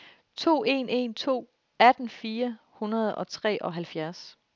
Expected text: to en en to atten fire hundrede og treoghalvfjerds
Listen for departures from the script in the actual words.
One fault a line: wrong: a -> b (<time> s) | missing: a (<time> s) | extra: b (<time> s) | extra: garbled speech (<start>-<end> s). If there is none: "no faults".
no faults